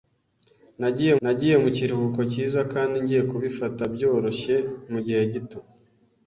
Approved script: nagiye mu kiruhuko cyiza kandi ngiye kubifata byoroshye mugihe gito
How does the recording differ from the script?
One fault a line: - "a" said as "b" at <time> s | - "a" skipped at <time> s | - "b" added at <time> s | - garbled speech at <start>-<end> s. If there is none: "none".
- "nagiye" added at 1.2 s